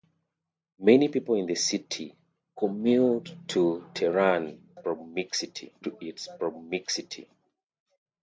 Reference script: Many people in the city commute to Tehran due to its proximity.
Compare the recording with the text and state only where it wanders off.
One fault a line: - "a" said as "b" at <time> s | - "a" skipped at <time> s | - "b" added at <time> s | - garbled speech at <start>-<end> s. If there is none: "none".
- "due" said as "proximity" at 4.8 s